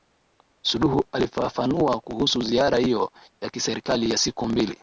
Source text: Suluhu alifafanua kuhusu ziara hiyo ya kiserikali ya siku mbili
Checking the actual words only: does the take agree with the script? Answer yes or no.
yes